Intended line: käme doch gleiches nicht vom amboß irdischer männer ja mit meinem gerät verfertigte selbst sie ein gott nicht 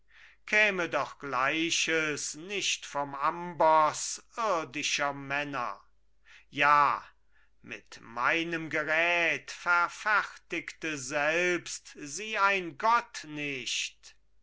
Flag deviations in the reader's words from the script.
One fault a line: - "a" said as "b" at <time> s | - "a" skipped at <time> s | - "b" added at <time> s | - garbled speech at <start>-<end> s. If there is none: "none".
none